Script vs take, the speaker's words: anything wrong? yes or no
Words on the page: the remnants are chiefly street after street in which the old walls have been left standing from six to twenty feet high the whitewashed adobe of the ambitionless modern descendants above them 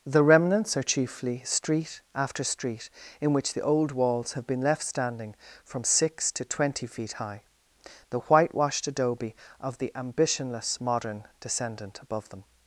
yes